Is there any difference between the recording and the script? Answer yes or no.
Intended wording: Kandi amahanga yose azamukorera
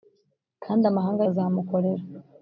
yes